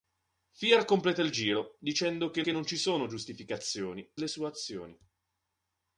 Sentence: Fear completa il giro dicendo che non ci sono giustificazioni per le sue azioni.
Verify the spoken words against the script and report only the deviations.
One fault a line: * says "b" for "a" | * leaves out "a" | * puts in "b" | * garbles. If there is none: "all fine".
* puts in "che"
* leaves out "per"